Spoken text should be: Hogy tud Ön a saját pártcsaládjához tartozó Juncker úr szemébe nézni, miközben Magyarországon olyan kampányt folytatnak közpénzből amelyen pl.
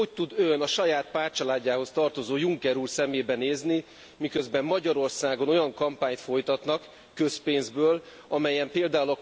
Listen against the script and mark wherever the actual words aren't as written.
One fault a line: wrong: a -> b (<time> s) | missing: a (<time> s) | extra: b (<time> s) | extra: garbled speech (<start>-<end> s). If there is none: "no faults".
no faults